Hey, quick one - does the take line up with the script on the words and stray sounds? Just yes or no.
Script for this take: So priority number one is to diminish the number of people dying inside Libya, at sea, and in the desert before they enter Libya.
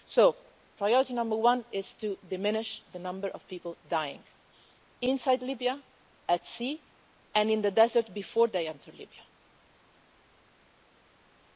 yes